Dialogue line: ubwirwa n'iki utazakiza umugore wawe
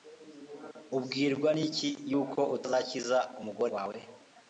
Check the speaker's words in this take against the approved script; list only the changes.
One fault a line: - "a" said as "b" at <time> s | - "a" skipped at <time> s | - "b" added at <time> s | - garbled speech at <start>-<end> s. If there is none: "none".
- "yuko" added at 2.1 s